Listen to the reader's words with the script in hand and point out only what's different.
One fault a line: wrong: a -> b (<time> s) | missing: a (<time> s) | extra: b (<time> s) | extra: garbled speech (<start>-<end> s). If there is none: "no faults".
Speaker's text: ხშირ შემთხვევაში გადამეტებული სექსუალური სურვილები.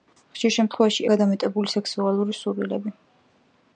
no faults